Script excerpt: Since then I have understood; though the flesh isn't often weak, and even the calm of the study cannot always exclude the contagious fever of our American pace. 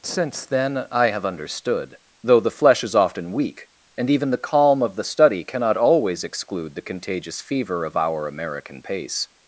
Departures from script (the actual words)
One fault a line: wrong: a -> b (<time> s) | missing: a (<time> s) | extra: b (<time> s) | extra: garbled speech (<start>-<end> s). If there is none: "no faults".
wrong: isn't -> is (2.8 s)